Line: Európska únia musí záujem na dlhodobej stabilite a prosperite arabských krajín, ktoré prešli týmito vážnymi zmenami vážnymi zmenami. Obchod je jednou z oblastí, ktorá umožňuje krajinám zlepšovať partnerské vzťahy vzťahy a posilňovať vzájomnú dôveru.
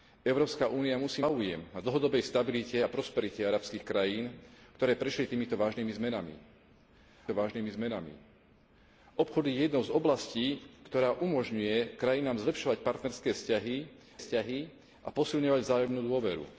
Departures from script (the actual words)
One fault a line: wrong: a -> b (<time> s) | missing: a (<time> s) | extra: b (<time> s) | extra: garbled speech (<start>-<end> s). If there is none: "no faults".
no faults